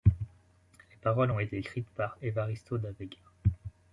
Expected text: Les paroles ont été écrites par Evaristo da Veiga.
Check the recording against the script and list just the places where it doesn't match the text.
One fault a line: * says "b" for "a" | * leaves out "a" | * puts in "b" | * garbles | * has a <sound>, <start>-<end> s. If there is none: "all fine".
all fine